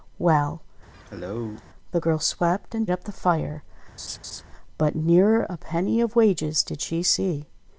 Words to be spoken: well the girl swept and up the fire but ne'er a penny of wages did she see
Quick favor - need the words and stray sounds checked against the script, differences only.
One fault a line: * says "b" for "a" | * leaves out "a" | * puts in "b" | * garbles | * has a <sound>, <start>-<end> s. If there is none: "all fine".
* has a cough, 0.9-1.6 s
* has a laugh, 4.0-4.4 s